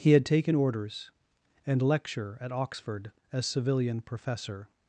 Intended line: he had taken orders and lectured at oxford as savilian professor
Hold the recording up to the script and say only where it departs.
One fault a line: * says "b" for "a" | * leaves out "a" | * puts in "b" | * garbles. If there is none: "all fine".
* says "lecture" for "lectured"